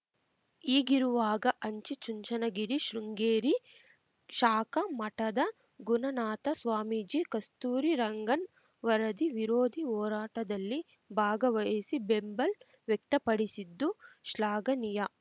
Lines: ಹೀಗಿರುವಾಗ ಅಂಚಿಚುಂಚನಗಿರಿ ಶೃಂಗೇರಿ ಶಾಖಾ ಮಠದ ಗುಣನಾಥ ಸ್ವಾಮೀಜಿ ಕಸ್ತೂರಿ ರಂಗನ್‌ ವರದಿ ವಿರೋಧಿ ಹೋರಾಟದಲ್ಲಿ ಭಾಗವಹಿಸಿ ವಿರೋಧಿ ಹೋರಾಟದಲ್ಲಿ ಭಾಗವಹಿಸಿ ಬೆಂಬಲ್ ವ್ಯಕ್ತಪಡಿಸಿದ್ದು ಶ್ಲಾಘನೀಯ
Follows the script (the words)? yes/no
no